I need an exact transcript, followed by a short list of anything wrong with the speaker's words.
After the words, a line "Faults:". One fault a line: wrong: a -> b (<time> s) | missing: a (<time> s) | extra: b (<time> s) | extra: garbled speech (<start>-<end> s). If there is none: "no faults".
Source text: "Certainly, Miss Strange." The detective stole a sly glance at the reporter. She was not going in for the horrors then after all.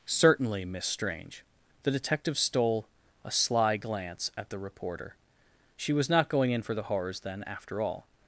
"Certainly, Miss Strange." The detective stole a sly glance at the reporter. She was not going in for the horrors then after all.
Faults:
no faults